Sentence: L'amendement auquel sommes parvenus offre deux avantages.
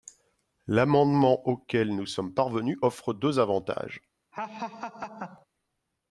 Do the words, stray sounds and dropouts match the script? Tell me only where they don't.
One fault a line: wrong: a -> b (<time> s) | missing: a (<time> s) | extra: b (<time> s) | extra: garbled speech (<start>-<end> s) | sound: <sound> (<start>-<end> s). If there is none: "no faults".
extra: nous (1.9 s)
sound: laugh (4.3-5.5 s)